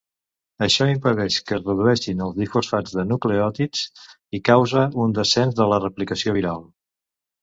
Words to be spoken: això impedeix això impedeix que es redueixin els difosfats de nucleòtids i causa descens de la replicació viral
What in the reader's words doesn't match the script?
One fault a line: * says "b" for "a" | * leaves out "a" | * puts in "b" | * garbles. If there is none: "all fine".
* leaves out "això impedeix"
* puts in "un"